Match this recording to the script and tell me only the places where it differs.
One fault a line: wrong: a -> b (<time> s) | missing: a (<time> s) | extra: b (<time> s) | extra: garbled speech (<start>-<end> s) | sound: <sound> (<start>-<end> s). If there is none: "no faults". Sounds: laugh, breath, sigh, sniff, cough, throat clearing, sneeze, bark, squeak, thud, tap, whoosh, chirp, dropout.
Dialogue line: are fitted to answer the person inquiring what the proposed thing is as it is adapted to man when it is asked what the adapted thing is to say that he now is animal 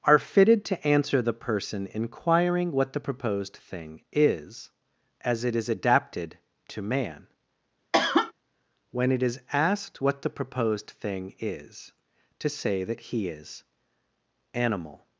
sound: cough (7.9-8.3 s)
wrong: adapted -> proposed (10.3 s)
missing: now (13.3 s)